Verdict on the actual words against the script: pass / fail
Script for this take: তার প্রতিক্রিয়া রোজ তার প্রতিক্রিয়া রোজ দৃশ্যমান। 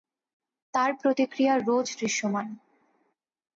fail